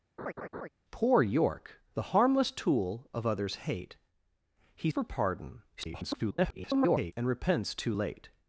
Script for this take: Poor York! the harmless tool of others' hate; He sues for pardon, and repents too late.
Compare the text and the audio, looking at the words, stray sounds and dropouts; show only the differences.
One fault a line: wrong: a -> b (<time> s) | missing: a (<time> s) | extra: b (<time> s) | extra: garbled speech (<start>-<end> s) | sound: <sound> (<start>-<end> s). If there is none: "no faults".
sound: laugh (0.2-0.7 s)
missing: sues (4.9 s)
extra: garbled speech (5.8-7.1 s)